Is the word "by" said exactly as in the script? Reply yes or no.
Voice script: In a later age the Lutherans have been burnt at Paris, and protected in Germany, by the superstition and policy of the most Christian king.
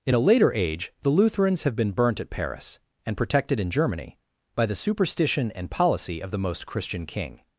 yes